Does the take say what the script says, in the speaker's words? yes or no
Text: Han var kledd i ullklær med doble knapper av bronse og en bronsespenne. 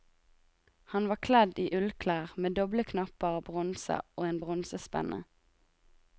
yes